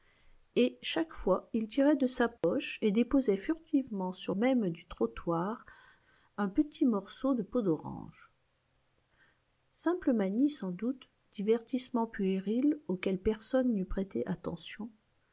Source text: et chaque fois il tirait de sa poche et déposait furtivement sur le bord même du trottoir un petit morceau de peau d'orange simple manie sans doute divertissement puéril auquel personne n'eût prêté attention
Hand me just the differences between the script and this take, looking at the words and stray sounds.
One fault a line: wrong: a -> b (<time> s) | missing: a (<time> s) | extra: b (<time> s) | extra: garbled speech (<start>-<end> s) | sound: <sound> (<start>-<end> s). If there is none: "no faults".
sound: dropout (2.4-2.4 s)
missing: le bord (4.3 s)